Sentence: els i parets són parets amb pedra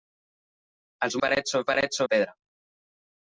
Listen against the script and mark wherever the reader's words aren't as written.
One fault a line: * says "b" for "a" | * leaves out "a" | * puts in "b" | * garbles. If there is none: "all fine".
all fine